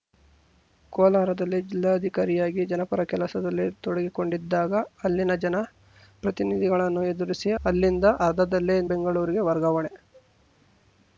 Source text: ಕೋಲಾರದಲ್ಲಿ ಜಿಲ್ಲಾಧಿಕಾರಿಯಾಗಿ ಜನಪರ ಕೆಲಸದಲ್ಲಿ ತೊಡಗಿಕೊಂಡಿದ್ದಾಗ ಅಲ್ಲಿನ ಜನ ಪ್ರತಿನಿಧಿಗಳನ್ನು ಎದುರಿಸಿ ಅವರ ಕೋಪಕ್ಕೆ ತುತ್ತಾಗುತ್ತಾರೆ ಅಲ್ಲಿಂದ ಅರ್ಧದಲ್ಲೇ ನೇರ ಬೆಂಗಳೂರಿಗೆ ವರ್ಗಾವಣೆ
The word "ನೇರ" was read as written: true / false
false